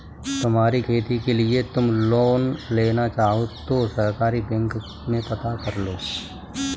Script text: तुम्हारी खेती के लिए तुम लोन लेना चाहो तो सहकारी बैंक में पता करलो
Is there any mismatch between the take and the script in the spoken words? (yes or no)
no